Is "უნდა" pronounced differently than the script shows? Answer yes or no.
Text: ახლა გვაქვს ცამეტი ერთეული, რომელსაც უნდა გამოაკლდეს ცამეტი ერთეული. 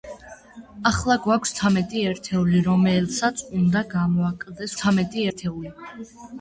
no